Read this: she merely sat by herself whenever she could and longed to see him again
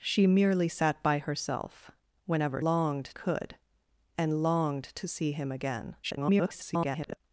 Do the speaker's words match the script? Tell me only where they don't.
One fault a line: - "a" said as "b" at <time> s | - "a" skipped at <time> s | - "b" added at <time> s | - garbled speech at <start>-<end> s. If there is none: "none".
- "she" said as "longed" at 2.6 s
- garbled speech at 6.0-7.2 s